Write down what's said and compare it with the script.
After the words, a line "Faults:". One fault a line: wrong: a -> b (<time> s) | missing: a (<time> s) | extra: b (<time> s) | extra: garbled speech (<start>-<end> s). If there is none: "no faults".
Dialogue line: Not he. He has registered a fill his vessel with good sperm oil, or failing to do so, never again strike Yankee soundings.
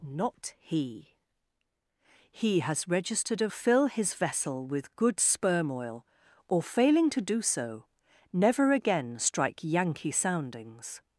Not he. He has registered a fill his vessel with good sperm oil, or failing to do so, never again strike Yankee soundings.
Faults:
no faults